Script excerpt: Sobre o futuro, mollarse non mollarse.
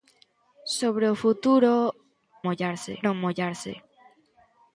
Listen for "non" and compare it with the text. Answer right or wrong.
right